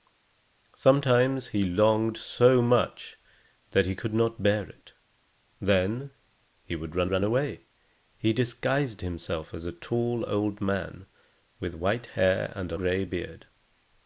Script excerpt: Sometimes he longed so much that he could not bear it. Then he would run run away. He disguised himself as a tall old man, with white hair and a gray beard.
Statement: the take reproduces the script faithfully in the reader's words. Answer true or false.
true